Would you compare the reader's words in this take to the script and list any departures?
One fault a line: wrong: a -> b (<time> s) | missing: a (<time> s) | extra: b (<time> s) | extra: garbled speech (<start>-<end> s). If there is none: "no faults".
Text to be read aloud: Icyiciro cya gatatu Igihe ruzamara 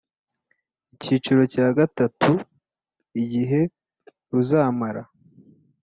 no faults